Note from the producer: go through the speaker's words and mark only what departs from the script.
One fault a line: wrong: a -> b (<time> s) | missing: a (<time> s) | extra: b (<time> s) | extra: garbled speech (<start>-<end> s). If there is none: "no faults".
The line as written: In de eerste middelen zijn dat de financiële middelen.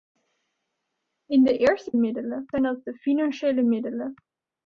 no faults